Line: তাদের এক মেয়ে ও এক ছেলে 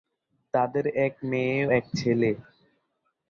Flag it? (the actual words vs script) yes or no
yes